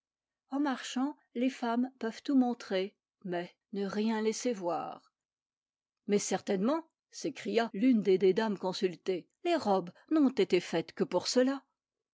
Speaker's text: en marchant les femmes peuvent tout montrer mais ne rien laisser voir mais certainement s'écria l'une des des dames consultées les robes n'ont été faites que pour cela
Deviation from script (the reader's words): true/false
false